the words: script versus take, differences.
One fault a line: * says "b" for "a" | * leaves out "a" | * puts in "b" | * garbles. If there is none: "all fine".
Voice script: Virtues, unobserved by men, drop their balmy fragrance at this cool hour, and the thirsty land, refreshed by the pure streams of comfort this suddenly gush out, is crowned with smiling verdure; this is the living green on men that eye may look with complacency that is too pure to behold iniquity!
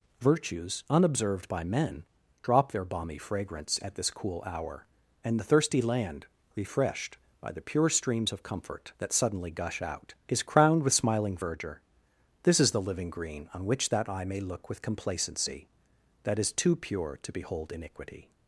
* says "that" for "this"
* says "which" for "men"